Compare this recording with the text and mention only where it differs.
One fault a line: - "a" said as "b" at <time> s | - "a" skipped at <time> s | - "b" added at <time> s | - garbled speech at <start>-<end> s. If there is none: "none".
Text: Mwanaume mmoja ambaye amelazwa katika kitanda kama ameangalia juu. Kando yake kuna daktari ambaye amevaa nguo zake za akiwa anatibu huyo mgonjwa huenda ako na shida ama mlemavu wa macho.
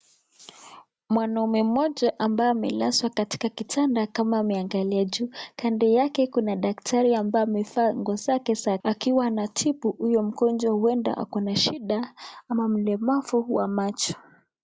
none